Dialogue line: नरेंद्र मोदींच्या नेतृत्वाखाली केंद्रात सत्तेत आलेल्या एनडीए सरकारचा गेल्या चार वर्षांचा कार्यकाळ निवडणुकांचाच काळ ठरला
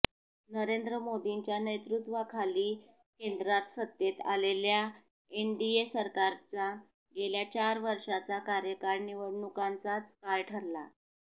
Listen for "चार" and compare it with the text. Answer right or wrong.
right